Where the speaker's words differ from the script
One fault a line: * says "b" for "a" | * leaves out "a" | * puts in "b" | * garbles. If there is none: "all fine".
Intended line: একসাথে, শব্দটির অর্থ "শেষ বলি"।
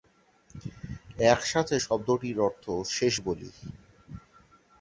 all fine